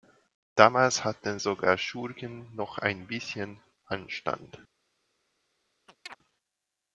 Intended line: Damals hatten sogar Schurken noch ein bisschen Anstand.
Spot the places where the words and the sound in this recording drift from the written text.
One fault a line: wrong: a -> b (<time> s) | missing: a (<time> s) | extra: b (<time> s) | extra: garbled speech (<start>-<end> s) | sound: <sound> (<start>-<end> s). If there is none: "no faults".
sound: chirp (5.9-6.2 s)